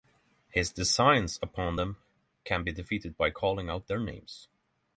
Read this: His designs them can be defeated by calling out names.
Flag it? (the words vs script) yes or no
yes